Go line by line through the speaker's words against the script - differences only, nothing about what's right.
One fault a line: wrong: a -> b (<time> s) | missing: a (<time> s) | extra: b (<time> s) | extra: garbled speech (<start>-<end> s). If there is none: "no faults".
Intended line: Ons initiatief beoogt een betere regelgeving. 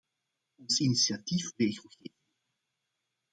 missing: beoogt een betere (1.5 s)